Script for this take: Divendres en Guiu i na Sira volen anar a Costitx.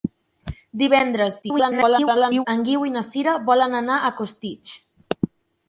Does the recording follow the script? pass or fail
fail